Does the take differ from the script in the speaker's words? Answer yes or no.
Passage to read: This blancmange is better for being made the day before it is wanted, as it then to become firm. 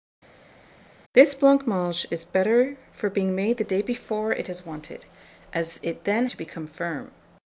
no